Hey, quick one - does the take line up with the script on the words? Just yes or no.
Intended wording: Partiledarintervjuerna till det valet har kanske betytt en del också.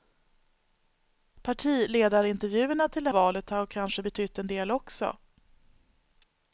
yes